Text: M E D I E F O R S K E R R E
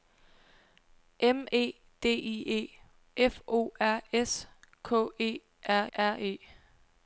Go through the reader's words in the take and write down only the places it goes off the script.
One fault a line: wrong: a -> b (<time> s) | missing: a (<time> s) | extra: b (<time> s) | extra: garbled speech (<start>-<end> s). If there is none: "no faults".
no faults